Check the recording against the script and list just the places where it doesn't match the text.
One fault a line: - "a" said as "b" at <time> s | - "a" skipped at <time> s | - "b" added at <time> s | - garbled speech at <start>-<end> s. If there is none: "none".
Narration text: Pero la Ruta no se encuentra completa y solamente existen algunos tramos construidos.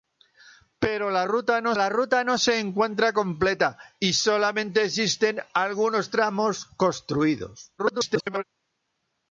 - "la Ruta no" added at 1.8 s
- garbled speech at 7.8-8.4 s